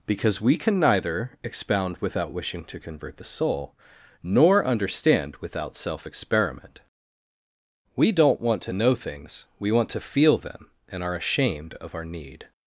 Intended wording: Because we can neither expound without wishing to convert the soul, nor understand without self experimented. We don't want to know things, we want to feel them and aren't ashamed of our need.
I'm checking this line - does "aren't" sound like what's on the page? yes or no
no